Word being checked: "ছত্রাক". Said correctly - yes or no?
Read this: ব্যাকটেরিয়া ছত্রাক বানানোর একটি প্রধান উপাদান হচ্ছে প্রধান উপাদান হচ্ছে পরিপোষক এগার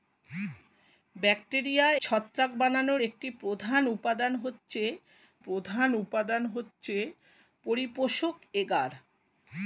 yes